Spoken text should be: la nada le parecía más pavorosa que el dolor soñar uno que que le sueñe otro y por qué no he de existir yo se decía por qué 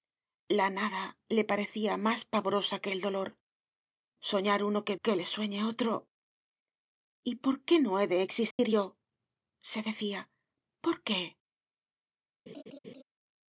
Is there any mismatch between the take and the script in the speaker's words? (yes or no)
no